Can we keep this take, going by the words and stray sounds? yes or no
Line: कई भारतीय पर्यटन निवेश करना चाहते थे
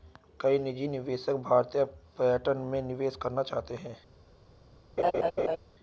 no